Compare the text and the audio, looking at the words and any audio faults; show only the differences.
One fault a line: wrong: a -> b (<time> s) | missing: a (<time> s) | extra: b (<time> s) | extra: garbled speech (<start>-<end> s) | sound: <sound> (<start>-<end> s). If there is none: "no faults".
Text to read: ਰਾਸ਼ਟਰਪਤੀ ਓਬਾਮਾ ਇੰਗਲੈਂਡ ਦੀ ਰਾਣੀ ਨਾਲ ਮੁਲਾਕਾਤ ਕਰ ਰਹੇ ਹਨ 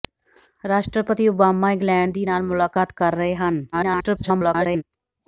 missing: ਰਾਣੀ (2.2 s)
extra: garbled speech (3.7-4.8 s)